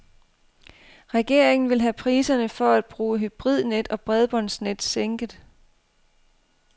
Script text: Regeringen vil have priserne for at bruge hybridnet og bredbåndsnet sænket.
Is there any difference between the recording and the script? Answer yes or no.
no